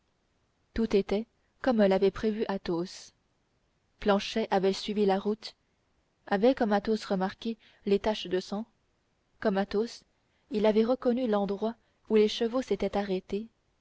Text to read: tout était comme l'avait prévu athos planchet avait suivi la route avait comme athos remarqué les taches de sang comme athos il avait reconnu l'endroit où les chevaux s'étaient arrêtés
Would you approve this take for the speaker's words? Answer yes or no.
yes